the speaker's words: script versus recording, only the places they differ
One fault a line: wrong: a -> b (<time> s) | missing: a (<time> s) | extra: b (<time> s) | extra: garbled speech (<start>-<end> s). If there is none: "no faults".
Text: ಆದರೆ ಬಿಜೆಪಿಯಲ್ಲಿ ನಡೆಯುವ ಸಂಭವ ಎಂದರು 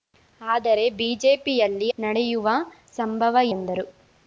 no faults